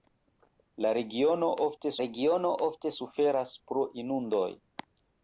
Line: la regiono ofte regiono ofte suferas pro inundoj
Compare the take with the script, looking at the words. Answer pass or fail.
pass